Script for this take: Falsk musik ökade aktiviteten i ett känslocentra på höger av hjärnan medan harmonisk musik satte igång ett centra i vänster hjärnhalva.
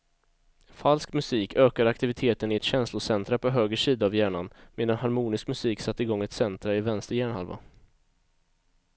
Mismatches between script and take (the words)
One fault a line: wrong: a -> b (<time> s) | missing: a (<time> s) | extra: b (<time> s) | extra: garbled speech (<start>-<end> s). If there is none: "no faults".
extra: sida (3.8 s)